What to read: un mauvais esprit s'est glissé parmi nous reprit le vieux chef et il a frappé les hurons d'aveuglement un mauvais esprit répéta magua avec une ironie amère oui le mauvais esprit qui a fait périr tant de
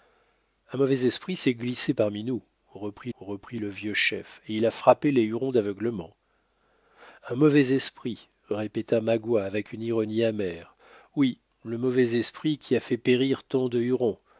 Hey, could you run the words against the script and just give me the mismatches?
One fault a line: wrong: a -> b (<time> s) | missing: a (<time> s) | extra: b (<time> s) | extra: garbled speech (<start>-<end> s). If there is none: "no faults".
extra: reprit (3.2 s)